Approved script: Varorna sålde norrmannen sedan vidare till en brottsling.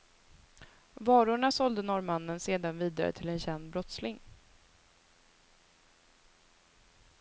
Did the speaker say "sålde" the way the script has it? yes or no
yes